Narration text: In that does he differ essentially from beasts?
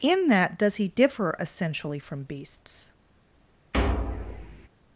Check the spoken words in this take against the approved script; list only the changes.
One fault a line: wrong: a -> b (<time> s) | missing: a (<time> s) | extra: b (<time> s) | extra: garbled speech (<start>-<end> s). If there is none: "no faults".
no faults